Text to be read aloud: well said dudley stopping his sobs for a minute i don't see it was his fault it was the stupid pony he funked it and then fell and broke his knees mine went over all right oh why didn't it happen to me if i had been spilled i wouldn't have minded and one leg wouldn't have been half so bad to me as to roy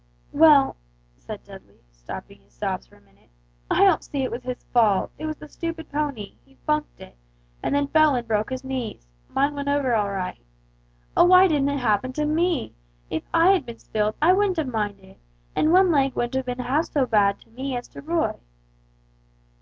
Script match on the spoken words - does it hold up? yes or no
yes